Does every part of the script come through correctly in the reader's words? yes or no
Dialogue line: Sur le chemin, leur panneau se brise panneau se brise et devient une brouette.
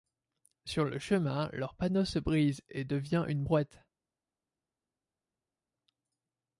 no